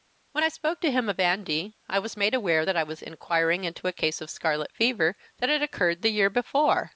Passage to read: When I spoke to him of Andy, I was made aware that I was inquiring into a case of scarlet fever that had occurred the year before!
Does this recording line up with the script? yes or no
yes